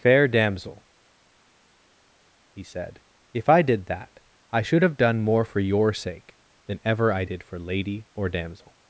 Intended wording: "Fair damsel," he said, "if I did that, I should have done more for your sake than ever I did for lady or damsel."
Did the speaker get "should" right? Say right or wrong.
right